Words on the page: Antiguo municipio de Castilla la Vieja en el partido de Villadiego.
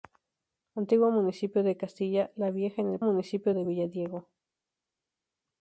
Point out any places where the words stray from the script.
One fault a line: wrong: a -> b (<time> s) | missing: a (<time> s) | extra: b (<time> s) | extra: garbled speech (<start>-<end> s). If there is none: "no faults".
wrong: partido -> municipio (3.0 s)